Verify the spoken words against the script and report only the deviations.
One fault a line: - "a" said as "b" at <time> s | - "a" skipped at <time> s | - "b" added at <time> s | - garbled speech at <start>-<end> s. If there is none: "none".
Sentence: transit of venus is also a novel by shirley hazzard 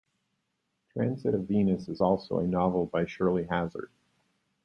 none